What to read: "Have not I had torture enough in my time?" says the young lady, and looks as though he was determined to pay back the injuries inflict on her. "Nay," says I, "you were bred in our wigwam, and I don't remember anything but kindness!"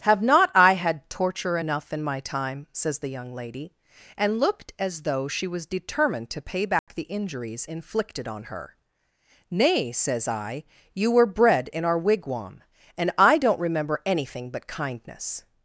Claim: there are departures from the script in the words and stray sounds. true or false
true